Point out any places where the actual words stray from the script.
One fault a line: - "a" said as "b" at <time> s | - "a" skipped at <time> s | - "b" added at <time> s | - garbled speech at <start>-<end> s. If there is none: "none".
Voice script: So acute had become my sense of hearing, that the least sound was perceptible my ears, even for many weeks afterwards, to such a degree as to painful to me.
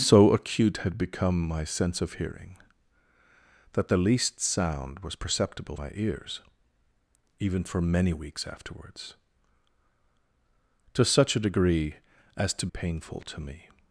none